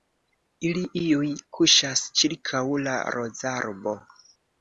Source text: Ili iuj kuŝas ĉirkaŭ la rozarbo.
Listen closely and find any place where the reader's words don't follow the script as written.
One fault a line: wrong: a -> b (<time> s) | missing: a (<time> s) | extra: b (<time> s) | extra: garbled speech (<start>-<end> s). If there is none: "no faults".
no faults